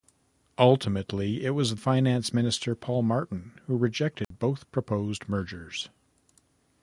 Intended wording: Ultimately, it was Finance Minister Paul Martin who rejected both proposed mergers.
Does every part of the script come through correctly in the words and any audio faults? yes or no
no